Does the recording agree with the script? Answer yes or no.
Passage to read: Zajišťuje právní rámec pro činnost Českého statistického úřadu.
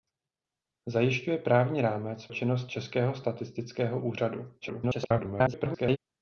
no